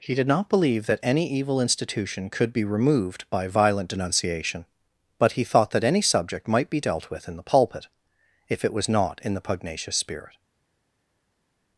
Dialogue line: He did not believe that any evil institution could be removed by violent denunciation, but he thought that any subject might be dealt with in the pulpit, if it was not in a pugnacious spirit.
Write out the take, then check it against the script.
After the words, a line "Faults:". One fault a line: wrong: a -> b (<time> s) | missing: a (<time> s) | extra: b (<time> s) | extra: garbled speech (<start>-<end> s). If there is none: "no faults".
He did not believe that any evil institution could be removed by violent denunciation, but he thought that any subject might be dealt with in the pulpit, if it was not in the pugnacious spirit.
Faults:
wrong: a -> the (9.3 s)